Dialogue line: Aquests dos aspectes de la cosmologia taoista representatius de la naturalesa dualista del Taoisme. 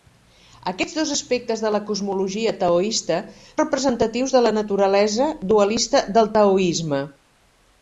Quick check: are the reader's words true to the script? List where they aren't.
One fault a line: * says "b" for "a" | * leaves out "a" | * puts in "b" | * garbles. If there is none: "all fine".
all fine